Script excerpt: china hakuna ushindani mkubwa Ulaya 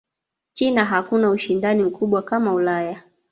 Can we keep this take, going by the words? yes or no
no